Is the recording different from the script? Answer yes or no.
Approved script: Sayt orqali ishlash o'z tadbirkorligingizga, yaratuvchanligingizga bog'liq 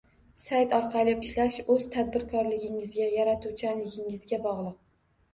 no